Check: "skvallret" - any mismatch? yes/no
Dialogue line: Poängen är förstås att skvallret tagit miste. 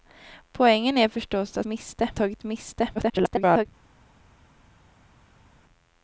yes